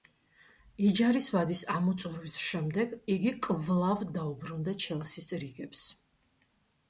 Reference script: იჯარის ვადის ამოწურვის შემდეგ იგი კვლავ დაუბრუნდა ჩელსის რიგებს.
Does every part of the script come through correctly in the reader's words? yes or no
yes